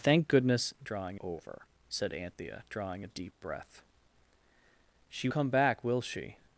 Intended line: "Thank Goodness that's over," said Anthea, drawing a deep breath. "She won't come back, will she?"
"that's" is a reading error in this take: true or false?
true